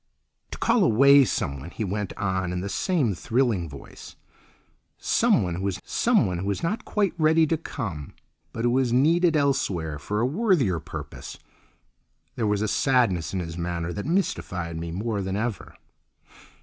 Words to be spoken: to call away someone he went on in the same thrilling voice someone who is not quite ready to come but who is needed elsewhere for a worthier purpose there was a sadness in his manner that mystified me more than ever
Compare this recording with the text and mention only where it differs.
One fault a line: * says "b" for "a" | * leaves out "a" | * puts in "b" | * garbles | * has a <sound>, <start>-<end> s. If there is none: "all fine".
* puts in "someone who is"